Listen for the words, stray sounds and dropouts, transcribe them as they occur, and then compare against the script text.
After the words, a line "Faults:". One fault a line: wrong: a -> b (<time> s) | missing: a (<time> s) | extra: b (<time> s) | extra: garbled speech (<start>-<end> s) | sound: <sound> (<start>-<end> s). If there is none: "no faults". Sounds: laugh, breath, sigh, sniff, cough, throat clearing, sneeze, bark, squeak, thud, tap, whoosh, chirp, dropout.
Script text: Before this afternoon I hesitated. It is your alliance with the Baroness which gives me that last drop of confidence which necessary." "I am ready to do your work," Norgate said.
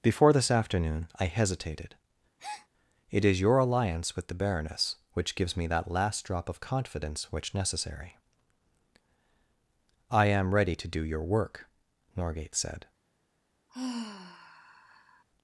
Before this afternoon I hesitated. It is your alliance with the Baroness which gives me that last drop of confidence which necessary." "I am ready to do your work," Norgate said.
Faults:
sound: breath (2.4-2.7 s)
sound: sigh (13.7-15.2 s)